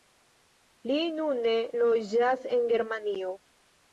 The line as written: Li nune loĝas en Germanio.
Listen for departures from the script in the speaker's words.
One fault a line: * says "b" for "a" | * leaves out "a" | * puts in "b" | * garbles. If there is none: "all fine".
all fine